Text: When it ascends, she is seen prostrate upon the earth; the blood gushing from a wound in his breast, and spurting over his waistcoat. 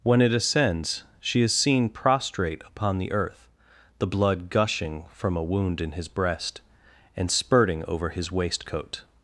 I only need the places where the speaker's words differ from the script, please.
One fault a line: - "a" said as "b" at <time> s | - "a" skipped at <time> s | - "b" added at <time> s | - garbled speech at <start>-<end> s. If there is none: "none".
none